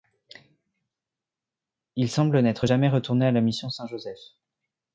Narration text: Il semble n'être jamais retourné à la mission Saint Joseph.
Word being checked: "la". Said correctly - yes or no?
yes